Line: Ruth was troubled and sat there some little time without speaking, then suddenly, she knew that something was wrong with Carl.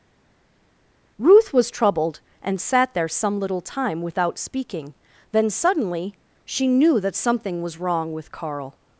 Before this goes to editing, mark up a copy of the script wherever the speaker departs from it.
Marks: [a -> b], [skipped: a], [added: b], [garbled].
Ruth was troubled and sat there some little time without speaking, then suddenly, she knew that something was wrong with Carl.